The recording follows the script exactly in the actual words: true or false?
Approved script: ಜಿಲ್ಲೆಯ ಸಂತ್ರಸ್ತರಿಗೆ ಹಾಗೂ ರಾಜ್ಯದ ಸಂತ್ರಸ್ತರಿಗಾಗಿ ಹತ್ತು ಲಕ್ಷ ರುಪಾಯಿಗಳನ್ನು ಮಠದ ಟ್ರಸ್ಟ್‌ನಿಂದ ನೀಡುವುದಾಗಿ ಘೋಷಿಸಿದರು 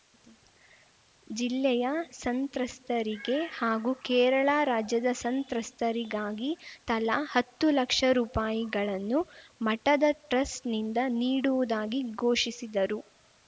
false